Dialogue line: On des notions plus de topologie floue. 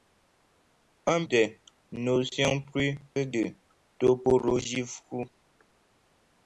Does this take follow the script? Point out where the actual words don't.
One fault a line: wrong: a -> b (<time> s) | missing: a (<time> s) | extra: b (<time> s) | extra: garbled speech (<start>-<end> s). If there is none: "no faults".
no faults